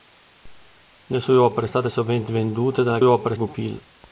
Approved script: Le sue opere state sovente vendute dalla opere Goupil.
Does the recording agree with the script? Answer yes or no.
yes